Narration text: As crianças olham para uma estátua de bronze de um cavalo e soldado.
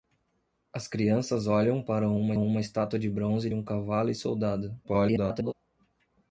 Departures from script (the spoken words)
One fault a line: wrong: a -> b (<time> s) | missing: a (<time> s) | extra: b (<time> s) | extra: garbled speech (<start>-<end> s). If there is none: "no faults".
extra: uma (2.4 s)
missing: de (3.5 s)
extra: garbled speech (4.8-5.5 s)